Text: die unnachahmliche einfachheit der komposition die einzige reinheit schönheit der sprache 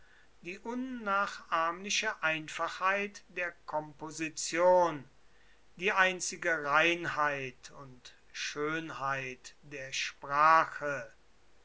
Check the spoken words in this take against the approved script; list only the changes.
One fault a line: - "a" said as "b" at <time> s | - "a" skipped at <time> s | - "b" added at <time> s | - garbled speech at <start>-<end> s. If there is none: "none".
- "und" added at 7.7 s